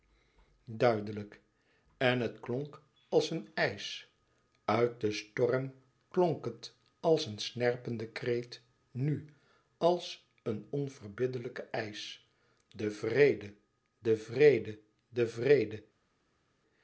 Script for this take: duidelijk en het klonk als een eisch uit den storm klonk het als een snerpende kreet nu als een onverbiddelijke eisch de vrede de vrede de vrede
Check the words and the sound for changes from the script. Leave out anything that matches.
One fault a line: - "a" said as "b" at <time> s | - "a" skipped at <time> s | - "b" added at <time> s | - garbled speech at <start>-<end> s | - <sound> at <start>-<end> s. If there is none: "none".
none